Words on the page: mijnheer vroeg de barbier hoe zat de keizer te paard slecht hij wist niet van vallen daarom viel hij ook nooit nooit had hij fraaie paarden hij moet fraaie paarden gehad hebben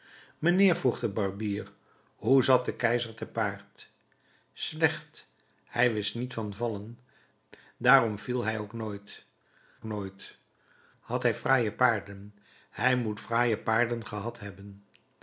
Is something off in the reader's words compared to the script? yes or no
no